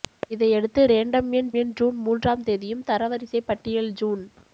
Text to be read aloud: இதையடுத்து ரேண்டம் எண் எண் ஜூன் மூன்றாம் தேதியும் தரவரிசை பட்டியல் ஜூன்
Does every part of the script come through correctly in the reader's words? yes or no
yes